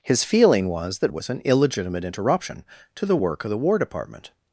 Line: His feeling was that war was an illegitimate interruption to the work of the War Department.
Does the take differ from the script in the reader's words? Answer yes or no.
yes